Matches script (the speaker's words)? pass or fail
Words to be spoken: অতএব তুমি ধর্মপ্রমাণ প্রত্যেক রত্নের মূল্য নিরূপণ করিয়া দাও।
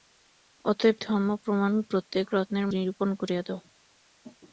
fail